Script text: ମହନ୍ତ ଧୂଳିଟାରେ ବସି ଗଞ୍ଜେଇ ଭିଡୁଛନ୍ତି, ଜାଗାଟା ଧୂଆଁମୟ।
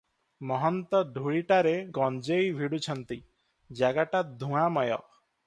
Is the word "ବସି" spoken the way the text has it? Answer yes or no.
no